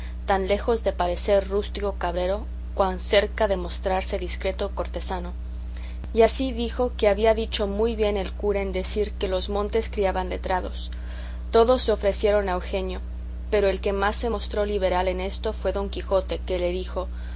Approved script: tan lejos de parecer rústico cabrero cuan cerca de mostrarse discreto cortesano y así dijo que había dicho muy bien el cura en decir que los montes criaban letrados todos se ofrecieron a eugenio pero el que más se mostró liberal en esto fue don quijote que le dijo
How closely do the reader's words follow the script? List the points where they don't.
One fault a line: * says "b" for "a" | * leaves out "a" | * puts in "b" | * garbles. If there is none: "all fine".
all fine